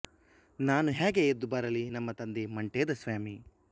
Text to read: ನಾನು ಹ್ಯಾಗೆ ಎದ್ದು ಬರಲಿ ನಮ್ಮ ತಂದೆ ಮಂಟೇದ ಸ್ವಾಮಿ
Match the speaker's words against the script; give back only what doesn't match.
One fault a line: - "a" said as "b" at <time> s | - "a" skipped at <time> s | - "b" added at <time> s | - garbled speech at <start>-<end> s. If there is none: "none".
none